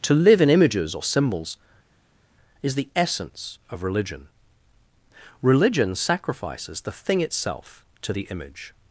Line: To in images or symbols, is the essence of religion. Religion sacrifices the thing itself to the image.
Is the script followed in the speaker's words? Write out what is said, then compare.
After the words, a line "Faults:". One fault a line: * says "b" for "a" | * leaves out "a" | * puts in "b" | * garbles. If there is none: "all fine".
To live in images or symbols, is the essence of religion. Religion sacrifices the thing itself to the image.
Faults:
* puts in "live"